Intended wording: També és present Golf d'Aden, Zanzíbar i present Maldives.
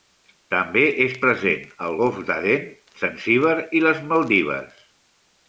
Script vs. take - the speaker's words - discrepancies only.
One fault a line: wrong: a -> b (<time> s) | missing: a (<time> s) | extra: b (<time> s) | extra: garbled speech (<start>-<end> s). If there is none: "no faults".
extra: al (1.9 s)
wrong: present -> les (3.9 s)